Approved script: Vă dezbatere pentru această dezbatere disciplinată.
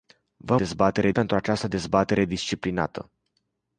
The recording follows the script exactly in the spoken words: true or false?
true